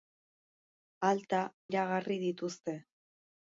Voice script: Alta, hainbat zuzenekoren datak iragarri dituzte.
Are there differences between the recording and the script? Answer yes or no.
yes